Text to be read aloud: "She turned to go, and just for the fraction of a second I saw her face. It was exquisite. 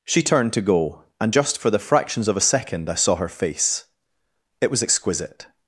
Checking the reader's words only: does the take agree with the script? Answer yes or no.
no